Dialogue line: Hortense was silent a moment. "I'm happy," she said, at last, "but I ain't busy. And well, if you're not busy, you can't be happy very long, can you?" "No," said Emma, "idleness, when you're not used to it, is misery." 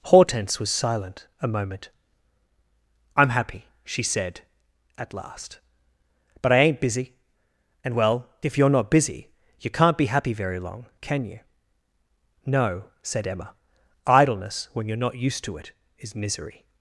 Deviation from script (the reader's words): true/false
false